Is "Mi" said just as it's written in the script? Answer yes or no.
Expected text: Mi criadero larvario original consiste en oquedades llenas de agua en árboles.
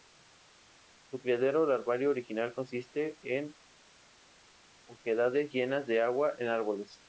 no